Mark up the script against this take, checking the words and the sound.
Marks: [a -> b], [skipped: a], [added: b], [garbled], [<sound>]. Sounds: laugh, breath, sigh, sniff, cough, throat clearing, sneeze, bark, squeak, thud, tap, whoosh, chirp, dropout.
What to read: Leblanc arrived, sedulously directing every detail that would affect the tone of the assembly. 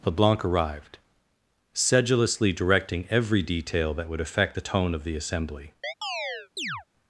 Leblanc arrived, sedulously directing every detail that would affect the tone of the assembly. [chirp]